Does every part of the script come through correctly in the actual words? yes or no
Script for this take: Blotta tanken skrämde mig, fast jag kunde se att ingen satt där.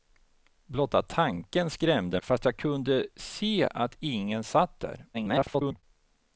no